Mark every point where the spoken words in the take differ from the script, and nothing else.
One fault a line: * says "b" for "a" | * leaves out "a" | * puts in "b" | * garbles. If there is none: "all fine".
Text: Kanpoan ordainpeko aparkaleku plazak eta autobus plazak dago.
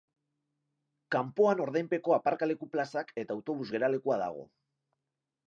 * says "geralekua" for "plazak"